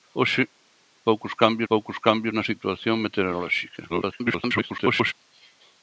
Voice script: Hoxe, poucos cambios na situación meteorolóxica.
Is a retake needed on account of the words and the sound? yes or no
yes